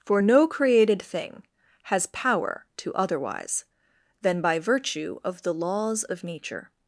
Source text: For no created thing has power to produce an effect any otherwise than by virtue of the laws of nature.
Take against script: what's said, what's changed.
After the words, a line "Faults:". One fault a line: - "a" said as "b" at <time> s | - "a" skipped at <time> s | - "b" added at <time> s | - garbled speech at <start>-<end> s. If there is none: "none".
For no created thing has power to otherwise than by virtue of the laws of nature.
Faults:
- "produce an effect any" skipped at 2.9 s